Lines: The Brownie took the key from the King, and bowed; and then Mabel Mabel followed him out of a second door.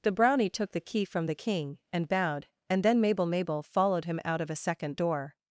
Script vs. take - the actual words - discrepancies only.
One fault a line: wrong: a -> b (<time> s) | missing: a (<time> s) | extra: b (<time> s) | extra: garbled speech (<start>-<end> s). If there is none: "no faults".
no faults